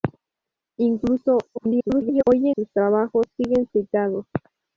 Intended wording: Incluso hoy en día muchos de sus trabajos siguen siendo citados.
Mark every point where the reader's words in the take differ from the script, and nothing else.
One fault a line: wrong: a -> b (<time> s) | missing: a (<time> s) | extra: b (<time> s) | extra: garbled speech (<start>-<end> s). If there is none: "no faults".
extra: garbled speech (1.5-2.2 s)
missing: día muchos de (2.6 s)
missing: siendo (3.7 s)